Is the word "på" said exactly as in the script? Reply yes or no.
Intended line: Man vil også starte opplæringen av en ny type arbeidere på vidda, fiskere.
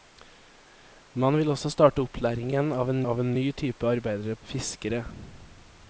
no